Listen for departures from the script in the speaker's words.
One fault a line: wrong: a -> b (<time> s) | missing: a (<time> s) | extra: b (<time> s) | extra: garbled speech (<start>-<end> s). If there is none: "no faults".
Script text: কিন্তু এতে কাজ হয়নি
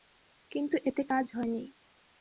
no faults